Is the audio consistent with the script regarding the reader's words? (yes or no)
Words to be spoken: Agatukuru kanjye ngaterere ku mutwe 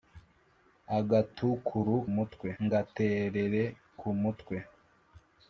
no